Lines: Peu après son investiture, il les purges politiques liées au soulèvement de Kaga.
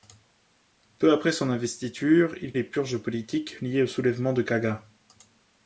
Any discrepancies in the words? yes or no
no